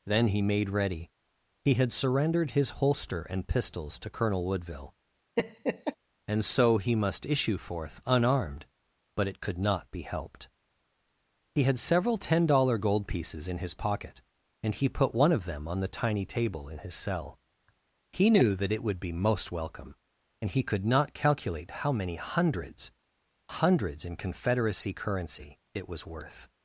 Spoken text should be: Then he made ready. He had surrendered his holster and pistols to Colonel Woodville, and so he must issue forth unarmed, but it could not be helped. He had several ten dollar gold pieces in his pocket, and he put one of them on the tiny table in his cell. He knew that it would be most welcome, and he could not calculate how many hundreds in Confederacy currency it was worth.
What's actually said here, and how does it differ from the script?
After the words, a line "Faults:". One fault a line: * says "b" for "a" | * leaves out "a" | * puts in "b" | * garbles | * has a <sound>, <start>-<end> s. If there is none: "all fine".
Then he made ready. He had surrendered his holster and pistols to Colonel Woodville, and so he must issue forth unarmed, but it could not be helped. He had several ten dollar gold pieces in his pocket, and he put one of them on the tiny table in his cell. He knew that it would be most welcome, and he could not calculate how many hundreds hundreds in Confederacy currency it was worth.
Faults:
* has a laugh, 5.4-6.0 s
* puts in "hundreds"